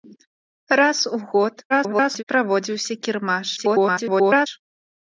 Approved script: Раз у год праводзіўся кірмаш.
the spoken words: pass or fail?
fail